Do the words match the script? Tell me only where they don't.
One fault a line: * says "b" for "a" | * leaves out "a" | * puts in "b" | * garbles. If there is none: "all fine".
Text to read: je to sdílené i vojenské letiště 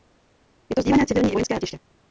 * puts in "civilní"